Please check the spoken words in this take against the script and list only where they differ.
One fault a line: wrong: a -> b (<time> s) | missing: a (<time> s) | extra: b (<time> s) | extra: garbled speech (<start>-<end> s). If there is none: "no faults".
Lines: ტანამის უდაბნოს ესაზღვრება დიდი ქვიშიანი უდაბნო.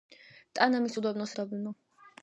missing: ესაზღვრება დიდი ქვიშიანი (1.3 s)